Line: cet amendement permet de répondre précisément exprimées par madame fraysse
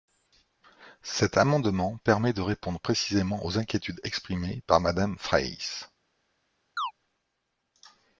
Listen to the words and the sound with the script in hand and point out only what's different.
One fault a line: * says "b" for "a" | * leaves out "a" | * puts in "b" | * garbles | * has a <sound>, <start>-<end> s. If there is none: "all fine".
* puts in "aux inquiétudes"
* has a chirp, 6.8-6.9 s